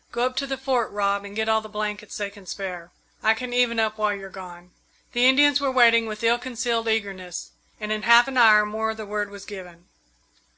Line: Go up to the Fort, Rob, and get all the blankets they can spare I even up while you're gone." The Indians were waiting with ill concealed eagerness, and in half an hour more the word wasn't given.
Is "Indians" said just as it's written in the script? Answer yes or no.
yes